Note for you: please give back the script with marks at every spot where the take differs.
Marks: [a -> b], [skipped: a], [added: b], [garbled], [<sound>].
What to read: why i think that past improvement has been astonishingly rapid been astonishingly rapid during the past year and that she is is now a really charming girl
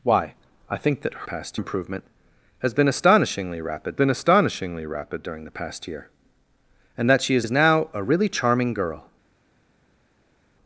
why i think that past improvement has been astonishingly rapid been astonishingly rapid during the past year and that she is is now a really charming girl